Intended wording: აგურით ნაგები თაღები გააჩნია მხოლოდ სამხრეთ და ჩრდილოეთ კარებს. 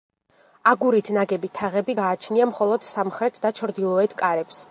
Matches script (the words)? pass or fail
pass